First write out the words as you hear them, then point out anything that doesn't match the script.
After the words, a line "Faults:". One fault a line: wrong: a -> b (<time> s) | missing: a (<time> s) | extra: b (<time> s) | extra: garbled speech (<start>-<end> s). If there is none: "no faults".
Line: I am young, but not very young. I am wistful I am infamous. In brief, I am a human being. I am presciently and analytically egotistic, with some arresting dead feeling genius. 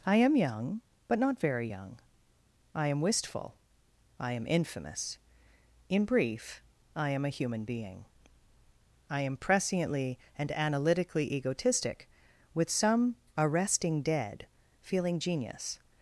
I am young, but not very young. I am wistful I am infamous. In brief, I am a human being. I am presciently and analytically egotistic, with some arresting dead feeling genius.
Faults:
no faults